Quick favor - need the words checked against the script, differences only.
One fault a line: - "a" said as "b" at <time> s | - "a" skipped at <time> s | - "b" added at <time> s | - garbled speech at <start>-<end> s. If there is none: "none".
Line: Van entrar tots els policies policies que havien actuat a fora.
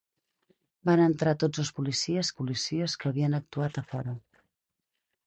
none